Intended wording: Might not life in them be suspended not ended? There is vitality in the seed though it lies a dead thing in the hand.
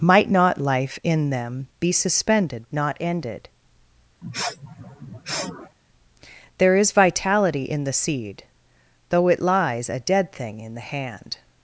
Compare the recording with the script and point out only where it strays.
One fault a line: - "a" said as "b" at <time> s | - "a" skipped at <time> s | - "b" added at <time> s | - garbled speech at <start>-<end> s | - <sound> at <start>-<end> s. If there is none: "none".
- sniff at 4.2-5.8 s